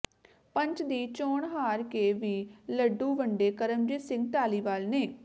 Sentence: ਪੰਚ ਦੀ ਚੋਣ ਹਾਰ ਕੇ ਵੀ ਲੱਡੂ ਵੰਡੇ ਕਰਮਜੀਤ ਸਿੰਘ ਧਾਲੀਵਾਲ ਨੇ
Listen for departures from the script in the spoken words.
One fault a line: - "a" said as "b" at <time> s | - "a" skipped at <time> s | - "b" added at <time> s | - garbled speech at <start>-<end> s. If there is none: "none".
none